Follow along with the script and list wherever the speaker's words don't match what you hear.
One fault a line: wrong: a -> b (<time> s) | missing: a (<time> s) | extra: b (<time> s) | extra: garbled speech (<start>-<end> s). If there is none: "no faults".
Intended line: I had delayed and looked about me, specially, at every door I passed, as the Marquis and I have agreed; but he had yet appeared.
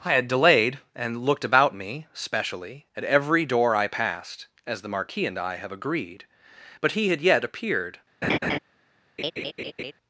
no faults